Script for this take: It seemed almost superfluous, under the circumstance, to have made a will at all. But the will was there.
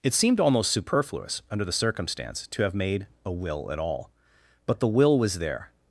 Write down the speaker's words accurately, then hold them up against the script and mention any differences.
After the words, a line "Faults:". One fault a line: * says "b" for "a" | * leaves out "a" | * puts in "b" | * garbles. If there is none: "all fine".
It seemed almost superfluous, under the circumstance, to have made a will at all. But the will was there.
Faults:
all fine